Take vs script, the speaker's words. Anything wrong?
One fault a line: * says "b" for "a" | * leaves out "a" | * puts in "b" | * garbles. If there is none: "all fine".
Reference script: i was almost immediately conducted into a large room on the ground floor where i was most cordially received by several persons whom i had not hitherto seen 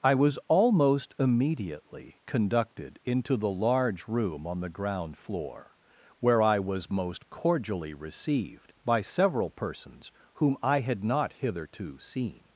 * says "the" for "a"